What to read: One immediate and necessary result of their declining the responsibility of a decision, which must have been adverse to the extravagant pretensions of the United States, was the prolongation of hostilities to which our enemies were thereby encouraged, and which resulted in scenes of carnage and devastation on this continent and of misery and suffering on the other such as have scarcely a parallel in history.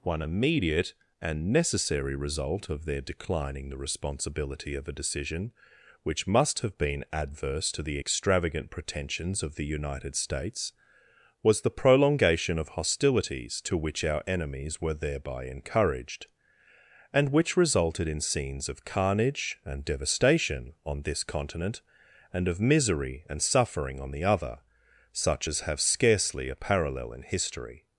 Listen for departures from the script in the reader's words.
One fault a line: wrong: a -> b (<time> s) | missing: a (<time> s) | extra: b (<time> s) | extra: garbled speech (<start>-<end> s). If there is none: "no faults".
no faults